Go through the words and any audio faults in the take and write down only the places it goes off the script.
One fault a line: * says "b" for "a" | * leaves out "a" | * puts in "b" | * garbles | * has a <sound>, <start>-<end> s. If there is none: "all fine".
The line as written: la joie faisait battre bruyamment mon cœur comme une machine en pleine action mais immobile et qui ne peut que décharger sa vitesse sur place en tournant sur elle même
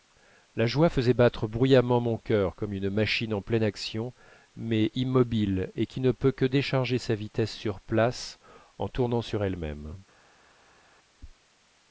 all fine